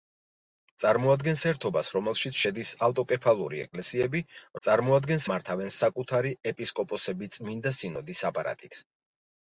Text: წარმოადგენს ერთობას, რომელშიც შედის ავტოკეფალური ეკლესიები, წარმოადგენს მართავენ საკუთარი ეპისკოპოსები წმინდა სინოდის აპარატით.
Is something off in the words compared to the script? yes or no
no